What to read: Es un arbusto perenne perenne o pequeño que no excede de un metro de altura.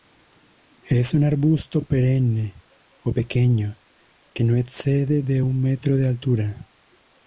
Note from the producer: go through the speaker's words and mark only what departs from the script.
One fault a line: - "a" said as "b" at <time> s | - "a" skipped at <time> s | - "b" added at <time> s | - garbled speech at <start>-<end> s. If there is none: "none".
- "perenne" skipped at 2.5 s